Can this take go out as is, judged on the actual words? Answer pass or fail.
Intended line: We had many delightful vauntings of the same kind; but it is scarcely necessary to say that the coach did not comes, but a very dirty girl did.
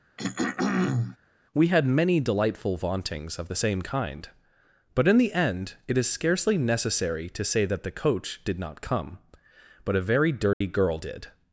fail